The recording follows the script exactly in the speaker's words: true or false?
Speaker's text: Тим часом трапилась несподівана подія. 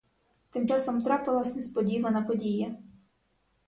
true